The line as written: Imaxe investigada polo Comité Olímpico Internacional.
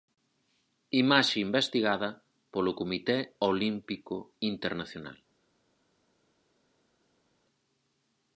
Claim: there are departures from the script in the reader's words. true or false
false